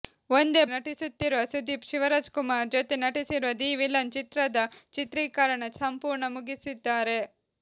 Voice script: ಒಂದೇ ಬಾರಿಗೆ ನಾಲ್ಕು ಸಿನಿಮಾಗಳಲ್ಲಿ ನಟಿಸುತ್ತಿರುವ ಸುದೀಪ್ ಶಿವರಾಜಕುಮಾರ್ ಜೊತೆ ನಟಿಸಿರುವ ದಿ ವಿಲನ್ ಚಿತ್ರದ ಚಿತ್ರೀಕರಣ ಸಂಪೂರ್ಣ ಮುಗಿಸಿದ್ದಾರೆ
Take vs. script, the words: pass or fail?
fail